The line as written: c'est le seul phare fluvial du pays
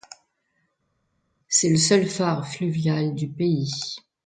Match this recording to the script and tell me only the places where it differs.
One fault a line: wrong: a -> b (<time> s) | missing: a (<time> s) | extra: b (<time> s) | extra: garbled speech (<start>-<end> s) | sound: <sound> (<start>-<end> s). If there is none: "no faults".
no faults